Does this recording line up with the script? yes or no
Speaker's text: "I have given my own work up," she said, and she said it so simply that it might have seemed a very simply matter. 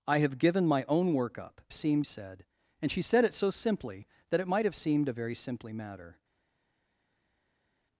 no